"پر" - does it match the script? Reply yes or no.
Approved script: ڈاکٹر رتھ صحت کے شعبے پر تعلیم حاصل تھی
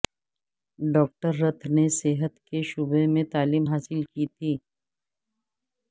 no